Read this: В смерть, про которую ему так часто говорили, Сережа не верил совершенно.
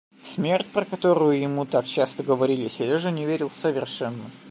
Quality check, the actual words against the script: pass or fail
pass